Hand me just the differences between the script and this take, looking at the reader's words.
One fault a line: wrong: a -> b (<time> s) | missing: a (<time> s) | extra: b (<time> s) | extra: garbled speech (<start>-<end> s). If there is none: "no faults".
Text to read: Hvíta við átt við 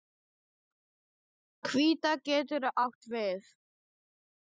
wrong: við -> getur (2.2 s)